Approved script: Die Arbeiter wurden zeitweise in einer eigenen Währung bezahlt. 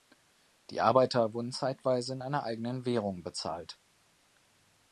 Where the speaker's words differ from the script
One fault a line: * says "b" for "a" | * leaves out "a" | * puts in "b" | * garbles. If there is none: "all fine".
all fine